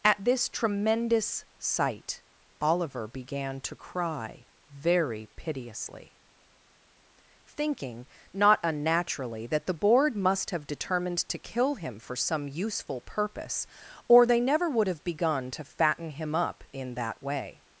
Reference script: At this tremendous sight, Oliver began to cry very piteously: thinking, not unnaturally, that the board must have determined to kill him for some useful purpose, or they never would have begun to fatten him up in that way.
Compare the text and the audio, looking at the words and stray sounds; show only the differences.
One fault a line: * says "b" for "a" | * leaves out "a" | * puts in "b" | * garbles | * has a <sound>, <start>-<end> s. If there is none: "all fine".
all fine